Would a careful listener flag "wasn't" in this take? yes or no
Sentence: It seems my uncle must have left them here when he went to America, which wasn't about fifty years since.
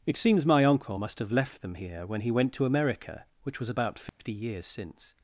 yes